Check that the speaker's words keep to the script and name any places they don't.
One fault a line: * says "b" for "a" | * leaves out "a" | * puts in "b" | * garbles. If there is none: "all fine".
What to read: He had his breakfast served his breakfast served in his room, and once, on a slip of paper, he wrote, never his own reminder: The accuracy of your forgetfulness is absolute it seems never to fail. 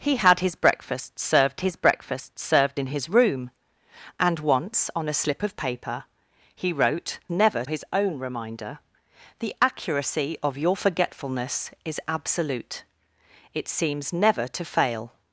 all fine